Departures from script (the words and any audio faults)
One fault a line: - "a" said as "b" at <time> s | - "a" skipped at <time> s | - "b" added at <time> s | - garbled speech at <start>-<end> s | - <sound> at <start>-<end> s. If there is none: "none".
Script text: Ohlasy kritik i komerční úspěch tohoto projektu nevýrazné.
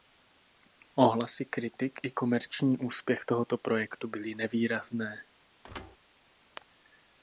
- "byly" added at 4.1 s
- thud at 5.6-6.0 s